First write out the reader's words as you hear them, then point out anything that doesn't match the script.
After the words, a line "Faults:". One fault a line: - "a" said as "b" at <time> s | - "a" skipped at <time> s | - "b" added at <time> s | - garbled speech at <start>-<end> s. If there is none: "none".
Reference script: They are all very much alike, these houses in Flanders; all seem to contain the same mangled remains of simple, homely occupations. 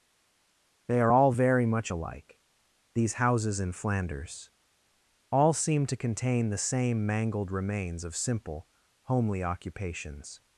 They are all very much alike, these houses in Flanders; all seem to contain the same mangled remains of simple, homely occupations.
Faults:
none